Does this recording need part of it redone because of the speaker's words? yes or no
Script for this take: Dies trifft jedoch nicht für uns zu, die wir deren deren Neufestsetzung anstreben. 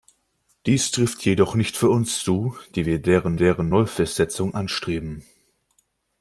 no